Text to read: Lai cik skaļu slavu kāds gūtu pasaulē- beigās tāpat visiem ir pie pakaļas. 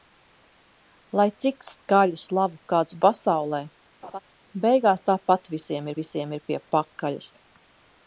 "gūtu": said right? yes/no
no